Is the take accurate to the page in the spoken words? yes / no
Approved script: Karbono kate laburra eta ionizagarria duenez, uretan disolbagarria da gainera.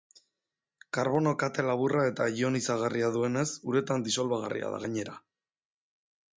yes